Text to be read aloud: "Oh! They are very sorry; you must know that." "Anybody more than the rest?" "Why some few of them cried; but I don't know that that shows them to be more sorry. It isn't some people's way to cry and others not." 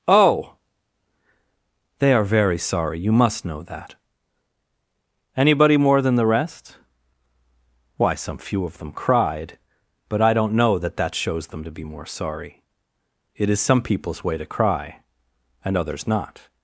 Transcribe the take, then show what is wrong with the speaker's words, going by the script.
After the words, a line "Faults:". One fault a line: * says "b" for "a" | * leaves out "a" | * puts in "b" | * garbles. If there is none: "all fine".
"Oh! They are very sorry; you must know that." "Anybody more than the rest?" "Why some few of them cried; but I don't know that that shows them to be more sorry. It is some people's way to cry and others not."
Faults:
* says "is" for "isn't"